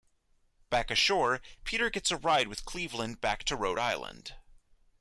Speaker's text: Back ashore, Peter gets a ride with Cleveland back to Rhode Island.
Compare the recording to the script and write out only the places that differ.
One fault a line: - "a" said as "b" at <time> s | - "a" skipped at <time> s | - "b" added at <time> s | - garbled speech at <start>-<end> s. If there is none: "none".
none